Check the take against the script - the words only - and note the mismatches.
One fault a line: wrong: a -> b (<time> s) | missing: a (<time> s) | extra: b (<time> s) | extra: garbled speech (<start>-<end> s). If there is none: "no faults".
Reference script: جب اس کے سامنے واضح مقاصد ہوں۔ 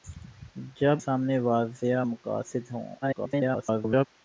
missing: اس کے (1.0 s)
extra: garbled speech (3.0-4.1 s)